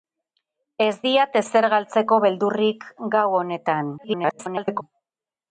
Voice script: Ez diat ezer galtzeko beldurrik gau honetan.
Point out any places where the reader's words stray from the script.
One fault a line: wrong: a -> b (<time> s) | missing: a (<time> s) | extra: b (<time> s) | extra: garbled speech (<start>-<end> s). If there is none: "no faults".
extra: garbled speech (4.0-4.8 s)